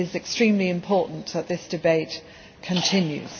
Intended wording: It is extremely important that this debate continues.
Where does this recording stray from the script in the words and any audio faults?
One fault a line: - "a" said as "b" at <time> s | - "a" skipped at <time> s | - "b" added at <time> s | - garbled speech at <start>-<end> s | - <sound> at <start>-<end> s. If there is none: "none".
none